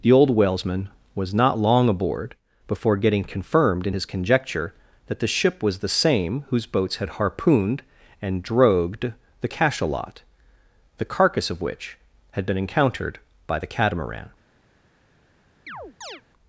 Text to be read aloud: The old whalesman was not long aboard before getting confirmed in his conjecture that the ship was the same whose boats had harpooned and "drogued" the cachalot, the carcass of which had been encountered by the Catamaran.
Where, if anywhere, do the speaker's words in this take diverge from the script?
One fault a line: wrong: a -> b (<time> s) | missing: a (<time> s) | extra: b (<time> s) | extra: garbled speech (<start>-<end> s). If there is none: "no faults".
no faults